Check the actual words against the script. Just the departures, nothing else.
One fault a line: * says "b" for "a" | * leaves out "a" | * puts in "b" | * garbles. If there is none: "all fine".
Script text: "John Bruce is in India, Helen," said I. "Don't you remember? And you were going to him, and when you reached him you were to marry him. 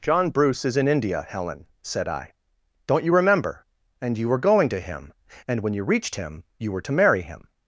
all fine